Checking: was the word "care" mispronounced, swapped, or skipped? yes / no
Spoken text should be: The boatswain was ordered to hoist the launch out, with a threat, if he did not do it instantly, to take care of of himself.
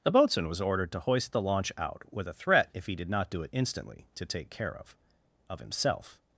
no